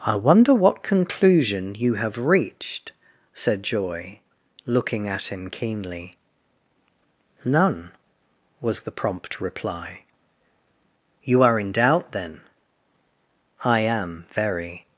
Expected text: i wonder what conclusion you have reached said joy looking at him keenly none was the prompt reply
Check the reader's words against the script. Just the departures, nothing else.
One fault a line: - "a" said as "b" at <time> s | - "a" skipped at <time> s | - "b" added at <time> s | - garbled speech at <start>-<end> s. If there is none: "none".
- "you are in doubt then i am very" added at 11.2 s